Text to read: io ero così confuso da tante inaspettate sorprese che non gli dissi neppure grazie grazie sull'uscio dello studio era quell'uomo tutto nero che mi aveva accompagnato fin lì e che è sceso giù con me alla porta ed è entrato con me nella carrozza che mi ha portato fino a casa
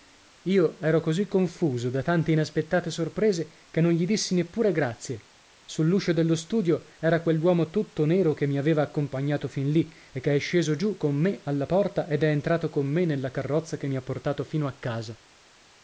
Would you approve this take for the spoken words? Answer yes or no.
no